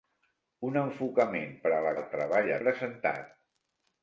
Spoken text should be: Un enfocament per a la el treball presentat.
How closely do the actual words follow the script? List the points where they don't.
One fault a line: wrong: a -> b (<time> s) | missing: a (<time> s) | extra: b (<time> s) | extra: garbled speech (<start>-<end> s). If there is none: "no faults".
no faults